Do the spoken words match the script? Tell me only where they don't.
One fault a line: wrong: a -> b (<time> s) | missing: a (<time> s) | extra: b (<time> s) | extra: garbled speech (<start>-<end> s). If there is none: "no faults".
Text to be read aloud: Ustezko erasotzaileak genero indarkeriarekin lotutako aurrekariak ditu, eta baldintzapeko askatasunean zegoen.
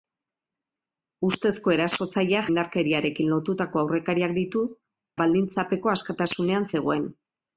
missing: genero (2.5 s)
missing: eta (4.6 s)